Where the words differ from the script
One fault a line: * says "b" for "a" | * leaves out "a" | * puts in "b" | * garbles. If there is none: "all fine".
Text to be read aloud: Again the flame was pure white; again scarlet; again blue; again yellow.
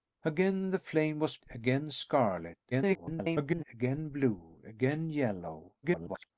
* leaves out "pure white"
* garbles
* garbles